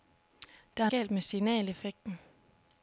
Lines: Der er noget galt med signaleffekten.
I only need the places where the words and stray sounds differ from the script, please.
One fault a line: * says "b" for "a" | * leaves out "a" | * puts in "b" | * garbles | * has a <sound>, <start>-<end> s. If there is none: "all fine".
* leaves out "noget"